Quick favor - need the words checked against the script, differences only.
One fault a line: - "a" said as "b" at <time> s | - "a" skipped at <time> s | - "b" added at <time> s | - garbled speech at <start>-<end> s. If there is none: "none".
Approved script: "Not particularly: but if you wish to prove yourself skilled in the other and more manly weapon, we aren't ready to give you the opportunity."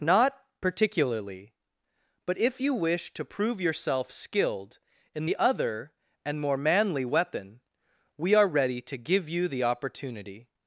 - "aren't" said as "are" at 8.3 s